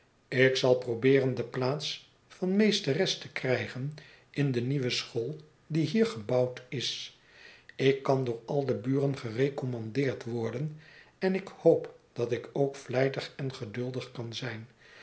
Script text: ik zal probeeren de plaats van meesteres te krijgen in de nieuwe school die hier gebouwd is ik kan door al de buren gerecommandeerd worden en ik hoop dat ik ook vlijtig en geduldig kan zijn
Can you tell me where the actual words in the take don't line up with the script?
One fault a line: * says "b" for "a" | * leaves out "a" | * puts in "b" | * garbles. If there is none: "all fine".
all fine